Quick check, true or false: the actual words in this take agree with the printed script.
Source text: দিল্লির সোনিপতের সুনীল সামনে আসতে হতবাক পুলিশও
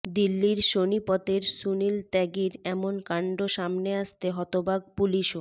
false